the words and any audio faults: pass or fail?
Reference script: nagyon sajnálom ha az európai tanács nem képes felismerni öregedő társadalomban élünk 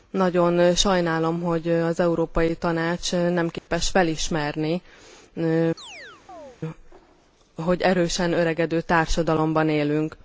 fail